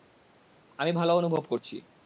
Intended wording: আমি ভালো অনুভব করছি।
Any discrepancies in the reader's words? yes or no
no